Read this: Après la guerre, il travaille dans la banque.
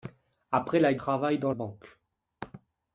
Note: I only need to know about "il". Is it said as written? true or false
false